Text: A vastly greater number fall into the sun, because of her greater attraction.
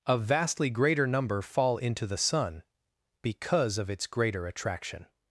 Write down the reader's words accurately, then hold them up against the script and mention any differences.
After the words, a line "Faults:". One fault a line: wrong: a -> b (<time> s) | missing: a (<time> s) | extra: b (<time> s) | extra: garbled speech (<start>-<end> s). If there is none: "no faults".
A vastly greater number fall into the sun, because of its greater attraction.
Faults:
wrong: her -> its (3.9 s)